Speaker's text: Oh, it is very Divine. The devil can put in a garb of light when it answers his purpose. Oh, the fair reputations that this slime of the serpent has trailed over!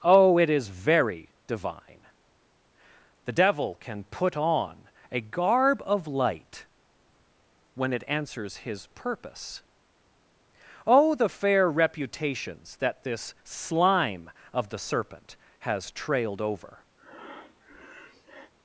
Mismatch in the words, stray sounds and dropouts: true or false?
true